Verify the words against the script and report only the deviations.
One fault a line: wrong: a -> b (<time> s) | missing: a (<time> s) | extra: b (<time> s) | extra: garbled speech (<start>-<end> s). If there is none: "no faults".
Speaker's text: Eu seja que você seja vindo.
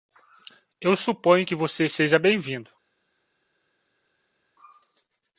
wrong: seja -> suponho (0.9 s)
extra: bem (2.2 s)